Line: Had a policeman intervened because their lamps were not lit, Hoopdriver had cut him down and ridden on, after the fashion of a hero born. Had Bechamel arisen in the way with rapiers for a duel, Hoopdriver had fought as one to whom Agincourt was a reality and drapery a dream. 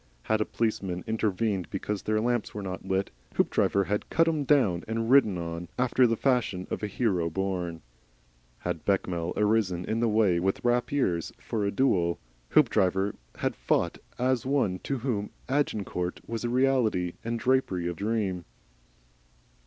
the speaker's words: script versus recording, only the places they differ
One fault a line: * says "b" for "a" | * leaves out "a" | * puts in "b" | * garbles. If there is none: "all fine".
all fine